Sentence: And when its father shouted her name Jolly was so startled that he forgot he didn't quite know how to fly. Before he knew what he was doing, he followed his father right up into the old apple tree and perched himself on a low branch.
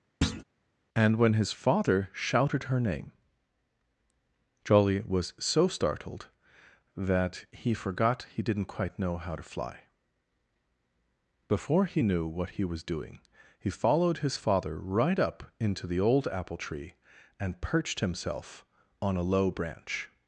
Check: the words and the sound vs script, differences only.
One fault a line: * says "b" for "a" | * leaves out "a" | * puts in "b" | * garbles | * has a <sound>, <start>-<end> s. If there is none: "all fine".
* has a thud, 0.2-0.4 s
* says "his" for "its"